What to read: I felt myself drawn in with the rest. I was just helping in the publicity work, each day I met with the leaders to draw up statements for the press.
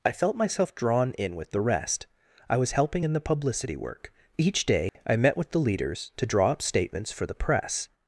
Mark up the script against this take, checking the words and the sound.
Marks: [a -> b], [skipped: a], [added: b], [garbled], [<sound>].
I felt myself drawn in with the rest. I was [skipped: just] helping in the publicity work, each day [dropout] I met with the leaders to draw up statements for the press.